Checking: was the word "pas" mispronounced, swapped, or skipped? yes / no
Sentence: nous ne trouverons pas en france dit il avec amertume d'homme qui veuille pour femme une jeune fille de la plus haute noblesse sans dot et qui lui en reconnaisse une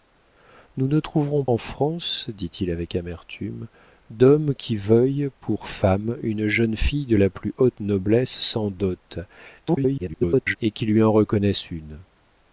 yes